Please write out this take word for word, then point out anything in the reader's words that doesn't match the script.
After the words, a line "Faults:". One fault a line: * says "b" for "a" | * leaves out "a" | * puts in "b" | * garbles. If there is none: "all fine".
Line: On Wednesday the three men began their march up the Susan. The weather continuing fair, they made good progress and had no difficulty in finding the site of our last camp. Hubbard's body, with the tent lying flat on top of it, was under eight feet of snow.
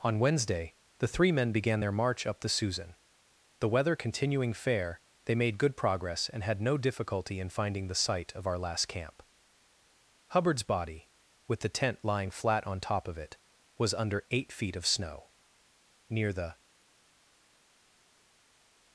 On Wednesday the three men began their march up the Susan. The weather continuing fair, they made good progress and had no difficulty in finding the site of our last camp. Hubbard's body, with the tent lying flat on top of it, was under eight feet of snow. Near the
Faults:
* puts in "Near the"